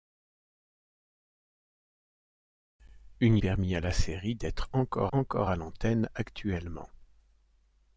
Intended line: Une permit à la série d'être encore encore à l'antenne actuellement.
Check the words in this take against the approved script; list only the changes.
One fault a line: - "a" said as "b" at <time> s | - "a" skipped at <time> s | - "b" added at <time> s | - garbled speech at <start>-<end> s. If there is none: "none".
none